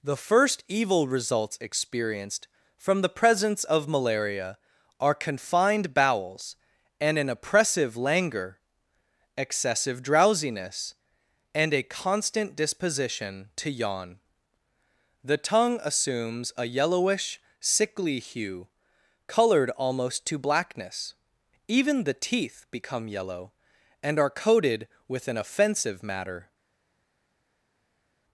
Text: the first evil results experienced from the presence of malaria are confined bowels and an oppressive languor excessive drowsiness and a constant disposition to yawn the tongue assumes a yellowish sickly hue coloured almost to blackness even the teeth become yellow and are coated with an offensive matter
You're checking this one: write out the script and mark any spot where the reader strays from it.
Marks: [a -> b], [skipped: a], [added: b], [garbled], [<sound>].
the first evil results experienced from the presence of malaria are confined bowels and an oppressive languor excessive drowsiness and a constant disposition to yawn the tongue assumes a yellowish sickly hue coloured almost to blackness even the teeth become yellow and are coated with an offensive matter